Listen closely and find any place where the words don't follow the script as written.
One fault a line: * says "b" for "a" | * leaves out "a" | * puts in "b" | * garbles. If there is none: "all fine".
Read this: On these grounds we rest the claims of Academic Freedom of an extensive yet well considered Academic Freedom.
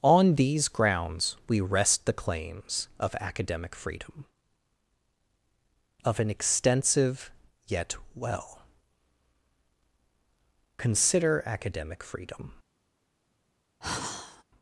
* says "consider" for "considered"